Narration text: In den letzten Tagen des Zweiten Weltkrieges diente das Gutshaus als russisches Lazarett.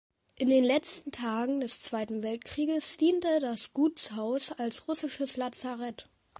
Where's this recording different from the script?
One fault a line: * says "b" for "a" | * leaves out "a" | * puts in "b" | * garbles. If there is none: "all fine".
all fine